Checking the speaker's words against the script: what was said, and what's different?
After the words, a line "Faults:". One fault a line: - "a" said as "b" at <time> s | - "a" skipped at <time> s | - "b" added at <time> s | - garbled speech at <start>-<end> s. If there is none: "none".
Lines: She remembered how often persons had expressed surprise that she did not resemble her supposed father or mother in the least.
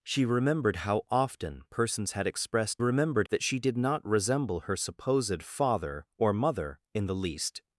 She remembered how often persons had expressed remembered that she did not resemble her supposed father or mother in the least.
Faults:
- "surprise" said as "remembered" at 2.8 s